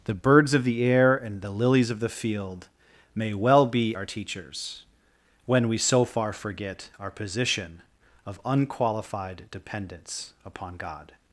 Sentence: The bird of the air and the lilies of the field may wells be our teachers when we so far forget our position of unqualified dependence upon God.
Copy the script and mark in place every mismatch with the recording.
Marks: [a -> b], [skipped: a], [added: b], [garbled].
The [bird -> birds] of the air and the lilies of the field may [wells -> well] be our teachers when we so far forget our position of unqualified dependence upon God.